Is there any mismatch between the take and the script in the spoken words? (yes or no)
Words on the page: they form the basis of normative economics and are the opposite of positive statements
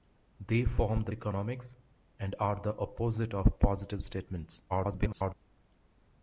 yes